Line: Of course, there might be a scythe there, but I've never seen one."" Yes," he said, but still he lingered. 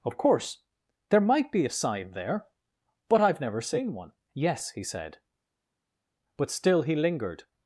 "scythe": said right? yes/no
no